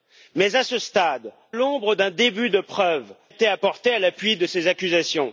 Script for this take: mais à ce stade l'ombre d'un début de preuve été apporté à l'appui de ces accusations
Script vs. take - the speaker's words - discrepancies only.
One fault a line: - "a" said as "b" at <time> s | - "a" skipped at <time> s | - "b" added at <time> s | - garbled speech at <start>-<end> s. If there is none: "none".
none